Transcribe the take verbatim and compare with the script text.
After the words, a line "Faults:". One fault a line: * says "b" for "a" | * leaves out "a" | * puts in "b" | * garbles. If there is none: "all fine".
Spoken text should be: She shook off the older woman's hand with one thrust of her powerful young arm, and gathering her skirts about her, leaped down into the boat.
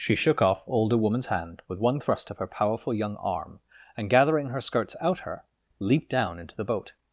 She shook off older woman's hand with one thrust of her powerful young arm, and gathering her skirts out her, leaped down into the boat.
Faults:
* leaves out "the"
* says "out" for "about"